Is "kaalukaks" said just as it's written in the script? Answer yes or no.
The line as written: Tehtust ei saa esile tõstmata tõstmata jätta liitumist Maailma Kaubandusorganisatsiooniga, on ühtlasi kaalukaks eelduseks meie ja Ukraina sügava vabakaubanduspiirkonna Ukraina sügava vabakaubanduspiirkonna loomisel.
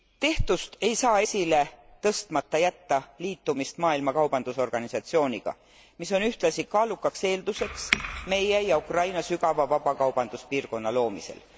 yes